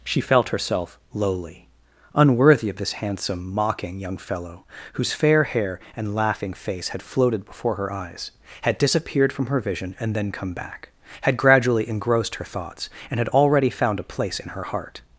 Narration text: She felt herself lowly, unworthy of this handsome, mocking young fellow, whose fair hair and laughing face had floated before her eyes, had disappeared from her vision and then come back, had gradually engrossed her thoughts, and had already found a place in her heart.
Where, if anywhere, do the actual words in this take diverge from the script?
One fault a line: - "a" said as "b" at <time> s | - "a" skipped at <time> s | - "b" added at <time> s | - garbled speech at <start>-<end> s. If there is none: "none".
none